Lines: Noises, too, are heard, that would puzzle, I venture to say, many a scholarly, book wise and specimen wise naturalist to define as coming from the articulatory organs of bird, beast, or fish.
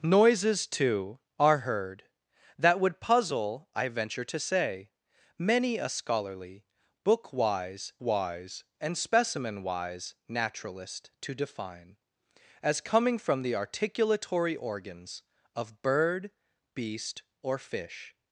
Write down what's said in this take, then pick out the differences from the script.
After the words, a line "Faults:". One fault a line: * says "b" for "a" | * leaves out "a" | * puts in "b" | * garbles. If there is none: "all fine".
Noises, too, are heard, that would puzzle, I venture to say, many a scholarly, book wise wise and specimen wise naturalist to define as coming from the articulatory organs of bird, beast, or fish.
Faults:
* puts in "wise"